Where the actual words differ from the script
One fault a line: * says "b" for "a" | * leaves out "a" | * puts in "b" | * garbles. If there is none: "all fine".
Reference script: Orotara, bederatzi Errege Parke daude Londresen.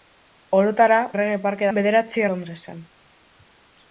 * leaves out "bederatzi"
* says "bederatzi" for "daude"